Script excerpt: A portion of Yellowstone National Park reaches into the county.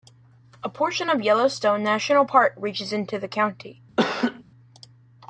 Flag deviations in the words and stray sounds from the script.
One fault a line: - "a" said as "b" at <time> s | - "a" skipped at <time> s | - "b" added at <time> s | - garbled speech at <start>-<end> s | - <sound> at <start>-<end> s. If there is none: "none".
- laugh at 4.0-4.4 s